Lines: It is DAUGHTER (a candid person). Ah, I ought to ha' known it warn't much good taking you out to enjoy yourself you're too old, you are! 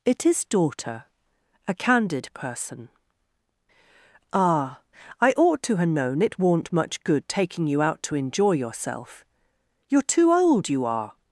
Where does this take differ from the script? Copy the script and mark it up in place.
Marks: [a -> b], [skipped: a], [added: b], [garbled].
It is DAUGHTER (a candid person). Ah, I ought to ha' known it warn't much good taking you out to enjoy yourself you're too old, you are!